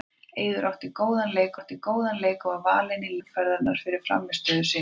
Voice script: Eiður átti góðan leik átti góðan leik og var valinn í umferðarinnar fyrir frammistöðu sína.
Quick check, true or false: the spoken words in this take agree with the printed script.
true